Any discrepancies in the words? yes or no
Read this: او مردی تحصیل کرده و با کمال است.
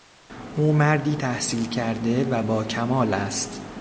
no